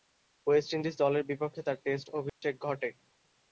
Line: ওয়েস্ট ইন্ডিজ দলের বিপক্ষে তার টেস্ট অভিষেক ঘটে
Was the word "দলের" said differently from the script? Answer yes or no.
no